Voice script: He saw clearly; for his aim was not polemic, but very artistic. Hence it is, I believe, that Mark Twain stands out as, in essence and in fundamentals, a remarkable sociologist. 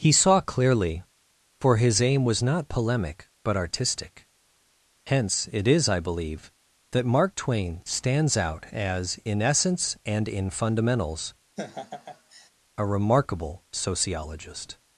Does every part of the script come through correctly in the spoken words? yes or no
no